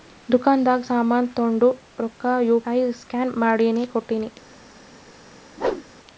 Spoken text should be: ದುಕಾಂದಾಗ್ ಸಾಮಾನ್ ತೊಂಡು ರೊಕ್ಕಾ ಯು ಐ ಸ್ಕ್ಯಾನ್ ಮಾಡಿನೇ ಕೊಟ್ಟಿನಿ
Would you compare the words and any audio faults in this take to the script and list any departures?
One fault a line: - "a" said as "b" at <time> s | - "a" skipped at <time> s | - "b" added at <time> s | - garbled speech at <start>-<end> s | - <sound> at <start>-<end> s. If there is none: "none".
- whoosh at 5.6-5.9 s